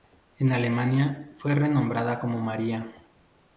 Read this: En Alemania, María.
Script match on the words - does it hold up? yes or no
no